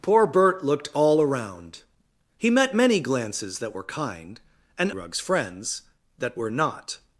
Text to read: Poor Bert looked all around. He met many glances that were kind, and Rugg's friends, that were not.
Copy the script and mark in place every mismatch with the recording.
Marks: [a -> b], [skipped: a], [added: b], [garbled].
Poor Bert looked all around. He met many glances that were kind, and Rugg's friends, that were not.